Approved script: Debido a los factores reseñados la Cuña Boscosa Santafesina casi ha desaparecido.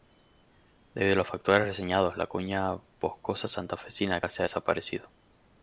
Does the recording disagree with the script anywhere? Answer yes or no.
no